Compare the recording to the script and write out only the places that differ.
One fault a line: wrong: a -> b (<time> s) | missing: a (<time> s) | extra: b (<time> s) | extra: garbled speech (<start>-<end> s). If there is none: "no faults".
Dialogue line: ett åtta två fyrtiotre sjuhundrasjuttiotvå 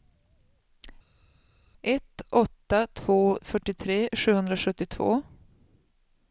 no faults